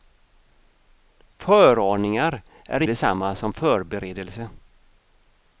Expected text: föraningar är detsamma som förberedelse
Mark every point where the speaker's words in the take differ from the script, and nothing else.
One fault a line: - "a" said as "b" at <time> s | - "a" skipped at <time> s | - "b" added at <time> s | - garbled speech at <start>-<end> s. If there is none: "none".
none